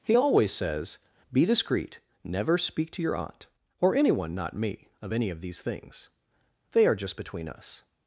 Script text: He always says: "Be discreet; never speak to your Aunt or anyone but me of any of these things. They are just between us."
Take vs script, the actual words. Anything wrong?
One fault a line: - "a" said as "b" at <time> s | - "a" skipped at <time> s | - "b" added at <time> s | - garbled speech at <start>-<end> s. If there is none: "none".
- "but" said as "not" at 4.3 s